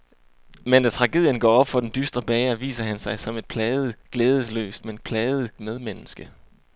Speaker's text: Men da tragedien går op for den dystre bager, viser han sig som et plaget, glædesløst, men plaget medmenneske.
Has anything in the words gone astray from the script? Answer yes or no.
no